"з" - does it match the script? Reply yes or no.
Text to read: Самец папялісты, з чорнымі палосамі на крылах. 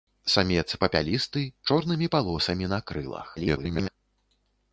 no